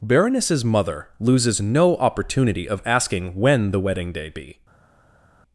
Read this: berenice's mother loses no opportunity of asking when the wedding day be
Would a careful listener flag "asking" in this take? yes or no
no